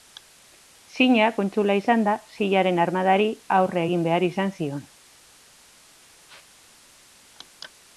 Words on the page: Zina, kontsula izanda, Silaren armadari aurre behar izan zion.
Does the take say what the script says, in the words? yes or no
no